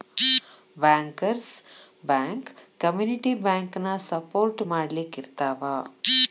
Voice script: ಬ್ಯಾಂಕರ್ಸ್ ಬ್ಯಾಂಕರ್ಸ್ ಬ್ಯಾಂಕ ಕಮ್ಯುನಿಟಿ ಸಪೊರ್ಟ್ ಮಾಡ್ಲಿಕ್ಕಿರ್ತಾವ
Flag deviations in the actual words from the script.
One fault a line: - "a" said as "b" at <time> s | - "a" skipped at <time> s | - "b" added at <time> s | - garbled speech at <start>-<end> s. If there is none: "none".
- "ಬ್ಯಾಂಕರ್ಸ್" skipped at 1.5 s
- "ಬ್ಯಾಂಕನ" added at 3.4 s